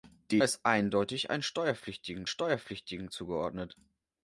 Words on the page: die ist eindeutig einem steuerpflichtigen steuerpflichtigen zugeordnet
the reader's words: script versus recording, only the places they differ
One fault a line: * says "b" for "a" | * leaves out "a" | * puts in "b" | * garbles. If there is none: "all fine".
all fine